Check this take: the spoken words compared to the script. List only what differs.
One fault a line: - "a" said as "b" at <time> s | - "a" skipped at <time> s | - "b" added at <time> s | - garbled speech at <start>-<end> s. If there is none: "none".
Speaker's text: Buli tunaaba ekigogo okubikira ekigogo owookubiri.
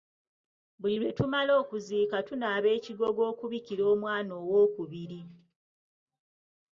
- "lwe tumala okuziika" added at 1.0 s
- "ekigogo" said as "omwana" at 3.9 s